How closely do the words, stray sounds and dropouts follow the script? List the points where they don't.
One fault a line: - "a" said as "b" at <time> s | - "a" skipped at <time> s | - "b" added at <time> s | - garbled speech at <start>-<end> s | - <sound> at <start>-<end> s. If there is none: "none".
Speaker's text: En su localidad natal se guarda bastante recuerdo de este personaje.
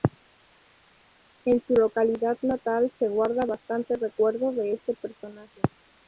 none